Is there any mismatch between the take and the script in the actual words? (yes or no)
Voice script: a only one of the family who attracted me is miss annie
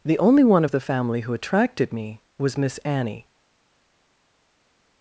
yes